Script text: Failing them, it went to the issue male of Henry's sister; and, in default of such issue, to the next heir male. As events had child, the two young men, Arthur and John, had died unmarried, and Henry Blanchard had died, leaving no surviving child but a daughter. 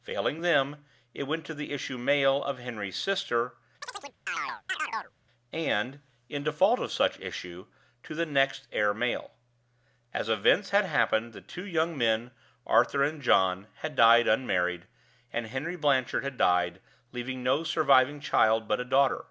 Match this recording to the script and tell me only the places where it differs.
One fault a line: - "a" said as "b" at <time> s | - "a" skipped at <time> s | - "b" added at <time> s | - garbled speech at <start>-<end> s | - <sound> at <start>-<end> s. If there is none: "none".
- chirp at 3.8-5.1 s
- "child" said as "happened" at 10.8 s